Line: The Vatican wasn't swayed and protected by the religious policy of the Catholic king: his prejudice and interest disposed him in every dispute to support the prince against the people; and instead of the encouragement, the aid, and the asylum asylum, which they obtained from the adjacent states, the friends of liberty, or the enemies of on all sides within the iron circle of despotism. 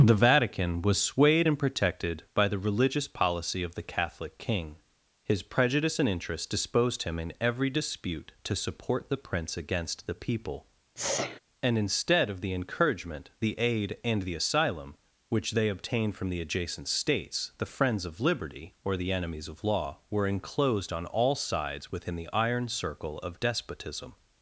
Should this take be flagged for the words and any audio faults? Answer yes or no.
yes